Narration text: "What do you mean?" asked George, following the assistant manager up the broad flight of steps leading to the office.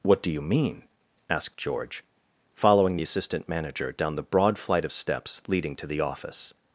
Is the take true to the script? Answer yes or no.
no